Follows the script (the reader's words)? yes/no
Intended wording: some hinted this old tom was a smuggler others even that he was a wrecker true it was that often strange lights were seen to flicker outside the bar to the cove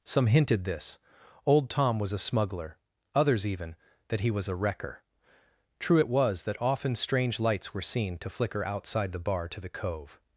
yes